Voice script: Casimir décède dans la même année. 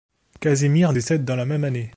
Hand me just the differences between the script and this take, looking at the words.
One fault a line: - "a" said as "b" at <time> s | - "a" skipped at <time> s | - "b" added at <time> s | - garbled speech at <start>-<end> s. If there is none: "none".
none